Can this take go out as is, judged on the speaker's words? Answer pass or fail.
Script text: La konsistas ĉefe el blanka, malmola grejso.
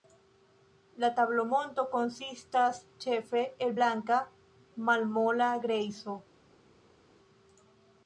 fail